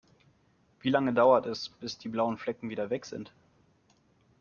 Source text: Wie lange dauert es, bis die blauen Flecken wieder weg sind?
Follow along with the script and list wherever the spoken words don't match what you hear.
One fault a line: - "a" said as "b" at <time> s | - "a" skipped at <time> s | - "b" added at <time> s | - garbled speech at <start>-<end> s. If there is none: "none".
none